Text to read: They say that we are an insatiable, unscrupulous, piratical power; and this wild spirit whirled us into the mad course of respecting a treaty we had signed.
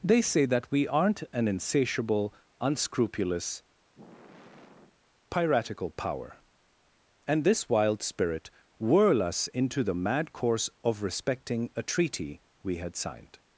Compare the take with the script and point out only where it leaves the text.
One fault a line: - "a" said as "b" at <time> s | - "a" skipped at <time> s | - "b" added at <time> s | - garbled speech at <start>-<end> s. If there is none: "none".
- "are" said as "aren't" at 0.9 s
- "whirled" said as "whirl" at 8.8 s